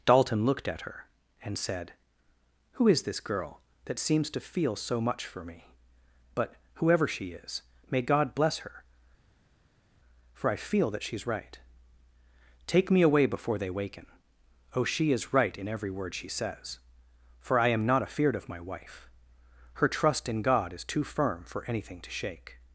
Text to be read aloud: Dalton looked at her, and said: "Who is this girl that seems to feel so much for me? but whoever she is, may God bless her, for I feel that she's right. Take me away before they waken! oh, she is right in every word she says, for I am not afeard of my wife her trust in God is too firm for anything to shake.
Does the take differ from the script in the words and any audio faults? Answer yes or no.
no